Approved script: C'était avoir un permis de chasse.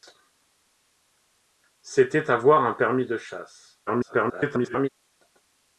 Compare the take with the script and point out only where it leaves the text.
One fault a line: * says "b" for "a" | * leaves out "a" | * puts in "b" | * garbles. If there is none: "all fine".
* garbles